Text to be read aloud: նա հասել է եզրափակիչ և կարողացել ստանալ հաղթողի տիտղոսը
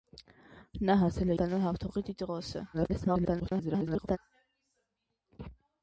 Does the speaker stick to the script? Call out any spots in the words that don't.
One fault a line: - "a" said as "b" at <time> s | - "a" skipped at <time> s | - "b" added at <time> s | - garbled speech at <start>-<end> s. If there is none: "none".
- "եզրափակիչ և կարողացել" skipped at 1.4 s
- garbled speech at 2.7-4.2 s